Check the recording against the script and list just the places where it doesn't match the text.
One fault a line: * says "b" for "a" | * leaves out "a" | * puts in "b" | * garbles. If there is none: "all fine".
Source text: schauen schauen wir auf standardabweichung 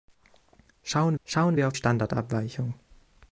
all fine